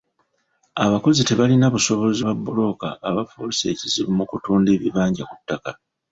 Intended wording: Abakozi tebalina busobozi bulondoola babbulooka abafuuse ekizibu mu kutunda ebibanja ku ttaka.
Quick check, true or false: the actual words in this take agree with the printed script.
false